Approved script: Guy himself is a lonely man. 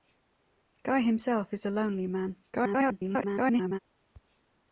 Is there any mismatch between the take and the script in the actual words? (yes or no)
yes